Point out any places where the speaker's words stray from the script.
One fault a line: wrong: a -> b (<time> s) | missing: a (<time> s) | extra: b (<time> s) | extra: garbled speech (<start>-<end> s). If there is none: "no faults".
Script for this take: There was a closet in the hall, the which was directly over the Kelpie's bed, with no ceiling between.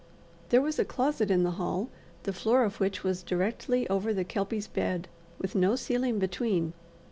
extra: floor of (2.3 s)